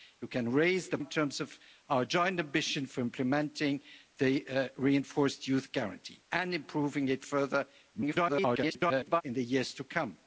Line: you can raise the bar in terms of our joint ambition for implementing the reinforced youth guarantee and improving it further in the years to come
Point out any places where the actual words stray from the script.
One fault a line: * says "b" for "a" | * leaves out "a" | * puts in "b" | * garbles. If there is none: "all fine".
* leaves out "bar"
* garbles